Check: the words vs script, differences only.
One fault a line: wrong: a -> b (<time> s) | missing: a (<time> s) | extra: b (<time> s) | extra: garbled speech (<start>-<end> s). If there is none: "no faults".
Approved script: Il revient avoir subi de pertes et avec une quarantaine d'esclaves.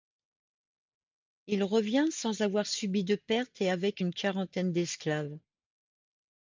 extra: sans (2.1 s)